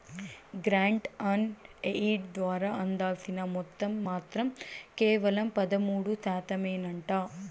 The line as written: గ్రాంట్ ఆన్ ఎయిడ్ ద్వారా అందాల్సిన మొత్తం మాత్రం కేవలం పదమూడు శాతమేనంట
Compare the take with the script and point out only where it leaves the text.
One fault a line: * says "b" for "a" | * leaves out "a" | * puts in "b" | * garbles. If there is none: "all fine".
all fine